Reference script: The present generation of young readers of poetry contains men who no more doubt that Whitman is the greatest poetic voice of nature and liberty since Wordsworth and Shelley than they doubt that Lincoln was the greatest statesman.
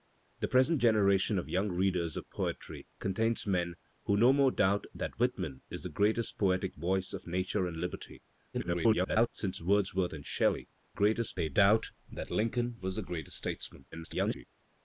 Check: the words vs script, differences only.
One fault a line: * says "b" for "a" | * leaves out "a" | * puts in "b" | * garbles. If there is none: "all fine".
* garbles
* says "greatest" for "than"
* garbles